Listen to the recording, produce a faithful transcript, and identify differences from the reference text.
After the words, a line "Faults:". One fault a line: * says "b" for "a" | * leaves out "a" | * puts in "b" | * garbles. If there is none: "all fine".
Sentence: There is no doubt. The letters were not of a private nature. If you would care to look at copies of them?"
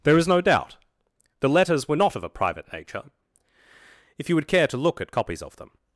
There is no doubt. The letters were not of a private nature. If you would care to look at copies of them?"
Faults:
all fine